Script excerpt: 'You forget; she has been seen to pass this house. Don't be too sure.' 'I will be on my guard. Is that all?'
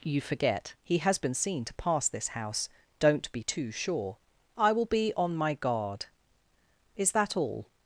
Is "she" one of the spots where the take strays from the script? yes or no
yes